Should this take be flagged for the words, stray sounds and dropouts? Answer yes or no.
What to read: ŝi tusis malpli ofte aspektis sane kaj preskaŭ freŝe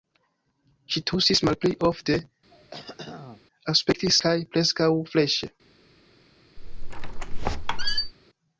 yes